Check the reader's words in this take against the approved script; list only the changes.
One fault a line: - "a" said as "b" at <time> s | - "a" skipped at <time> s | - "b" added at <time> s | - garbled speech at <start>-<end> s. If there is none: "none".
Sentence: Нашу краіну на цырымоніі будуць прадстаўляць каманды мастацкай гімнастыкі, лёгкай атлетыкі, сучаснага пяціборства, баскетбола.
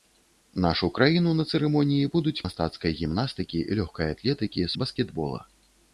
- "прадстаўляць каманды" skipped at 2.4 s
- "сучаснага пяціборства" skipped at 4.7 s